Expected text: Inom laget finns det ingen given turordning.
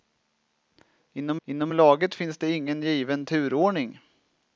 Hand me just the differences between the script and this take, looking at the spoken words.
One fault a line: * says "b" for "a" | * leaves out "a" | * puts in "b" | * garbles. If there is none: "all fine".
* puts in "inom"